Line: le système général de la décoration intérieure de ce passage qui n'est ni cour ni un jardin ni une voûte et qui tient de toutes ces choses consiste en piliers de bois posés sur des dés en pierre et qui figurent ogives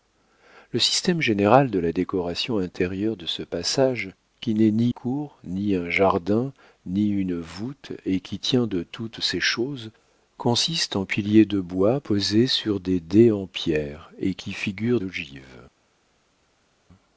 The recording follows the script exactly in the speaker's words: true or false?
true